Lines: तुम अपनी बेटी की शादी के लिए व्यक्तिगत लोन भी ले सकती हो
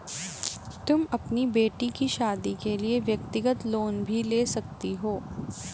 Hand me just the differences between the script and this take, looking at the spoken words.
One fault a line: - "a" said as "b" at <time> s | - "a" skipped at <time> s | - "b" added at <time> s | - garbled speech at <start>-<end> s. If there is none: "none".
none